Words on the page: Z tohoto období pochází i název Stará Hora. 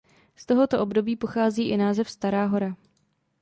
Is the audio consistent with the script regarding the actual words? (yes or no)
yes